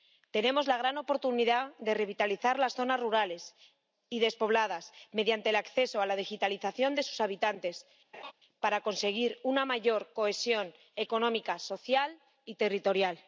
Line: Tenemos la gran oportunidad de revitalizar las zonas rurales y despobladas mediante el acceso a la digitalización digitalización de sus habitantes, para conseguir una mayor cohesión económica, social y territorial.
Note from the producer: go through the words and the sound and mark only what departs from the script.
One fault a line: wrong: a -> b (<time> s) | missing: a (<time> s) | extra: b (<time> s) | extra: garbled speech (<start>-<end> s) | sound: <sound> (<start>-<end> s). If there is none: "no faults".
missing: digitalización (7.0 s)
sound: laugh (8.1-8.3 s)